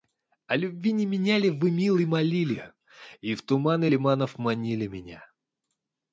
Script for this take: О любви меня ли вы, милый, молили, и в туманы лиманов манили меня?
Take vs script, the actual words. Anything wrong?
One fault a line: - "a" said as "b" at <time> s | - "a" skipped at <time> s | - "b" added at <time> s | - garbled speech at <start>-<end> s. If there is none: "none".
- "не" added at 0.9 s